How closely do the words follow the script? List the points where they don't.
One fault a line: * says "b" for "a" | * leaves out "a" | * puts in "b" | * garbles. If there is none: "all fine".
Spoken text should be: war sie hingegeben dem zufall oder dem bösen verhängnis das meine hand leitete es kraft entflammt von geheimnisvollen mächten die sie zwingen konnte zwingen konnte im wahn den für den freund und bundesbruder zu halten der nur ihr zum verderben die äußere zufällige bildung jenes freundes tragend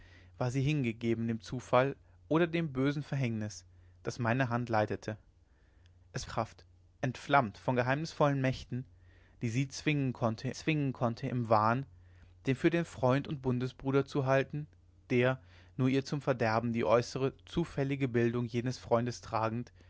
all fine